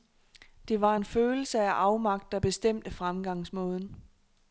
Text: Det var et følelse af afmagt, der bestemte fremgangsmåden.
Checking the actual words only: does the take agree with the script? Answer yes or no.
no